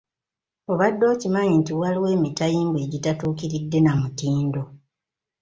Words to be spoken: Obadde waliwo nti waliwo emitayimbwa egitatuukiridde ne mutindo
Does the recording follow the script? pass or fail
fail